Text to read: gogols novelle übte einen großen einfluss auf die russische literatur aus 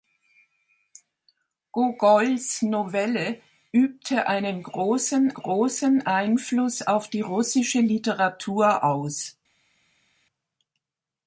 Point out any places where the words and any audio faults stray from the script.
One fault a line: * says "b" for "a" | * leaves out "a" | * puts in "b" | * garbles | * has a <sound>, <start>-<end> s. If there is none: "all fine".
* puts in "großen"